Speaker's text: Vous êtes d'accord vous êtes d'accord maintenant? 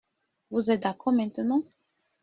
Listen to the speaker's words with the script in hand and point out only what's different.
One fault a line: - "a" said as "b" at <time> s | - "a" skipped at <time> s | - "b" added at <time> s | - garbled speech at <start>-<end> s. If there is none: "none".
- "vous êtes d'accord" skipped at 1.1 s